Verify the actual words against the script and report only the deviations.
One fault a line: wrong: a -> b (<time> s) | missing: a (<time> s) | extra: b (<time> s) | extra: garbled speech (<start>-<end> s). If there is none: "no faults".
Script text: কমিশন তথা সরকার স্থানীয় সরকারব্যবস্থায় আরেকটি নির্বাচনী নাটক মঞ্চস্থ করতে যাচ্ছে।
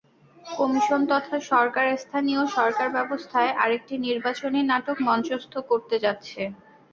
no faults